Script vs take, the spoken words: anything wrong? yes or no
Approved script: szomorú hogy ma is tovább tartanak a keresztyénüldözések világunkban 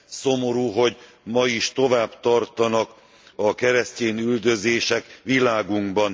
no